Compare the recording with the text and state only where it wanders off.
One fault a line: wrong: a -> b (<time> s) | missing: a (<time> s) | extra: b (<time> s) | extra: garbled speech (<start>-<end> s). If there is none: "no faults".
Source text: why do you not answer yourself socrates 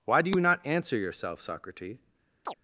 no faults